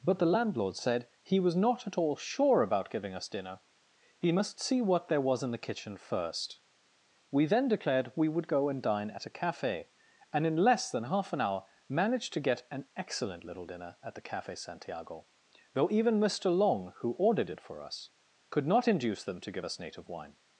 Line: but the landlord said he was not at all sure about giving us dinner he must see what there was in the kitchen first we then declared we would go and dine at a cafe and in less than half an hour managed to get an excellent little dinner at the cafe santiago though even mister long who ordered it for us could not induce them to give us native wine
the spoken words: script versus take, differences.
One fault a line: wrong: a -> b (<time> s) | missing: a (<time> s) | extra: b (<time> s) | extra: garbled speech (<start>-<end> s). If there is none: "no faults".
no faults